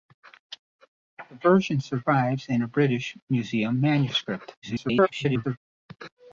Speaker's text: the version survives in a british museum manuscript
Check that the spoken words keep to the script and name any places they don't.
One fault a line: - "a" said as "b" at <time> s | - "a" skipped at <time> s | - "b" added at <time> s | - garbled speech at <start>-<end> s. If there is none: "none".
- garbled speech at 4.6-5.6 s